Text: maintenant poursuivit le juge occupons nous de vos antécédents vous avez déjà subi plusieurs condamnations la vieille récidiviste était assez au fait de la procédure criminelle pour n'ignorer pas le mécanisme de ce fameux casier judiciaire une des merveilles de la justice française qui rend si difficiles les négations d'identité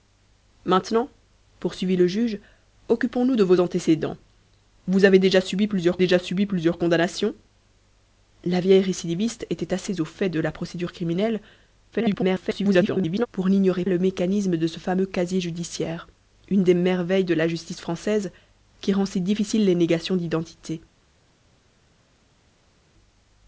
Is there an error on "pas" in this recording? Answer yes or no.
yes